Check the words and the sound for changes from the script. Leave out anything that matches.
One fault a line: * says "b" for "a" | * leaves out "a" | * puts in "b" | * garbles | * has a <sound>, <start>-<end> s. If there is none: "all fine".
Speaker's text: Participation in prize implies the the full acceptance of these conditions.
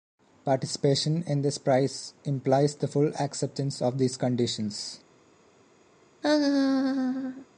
* puts in "this"
* leaves out "the"
* has a laugh, 6.2-7.5 s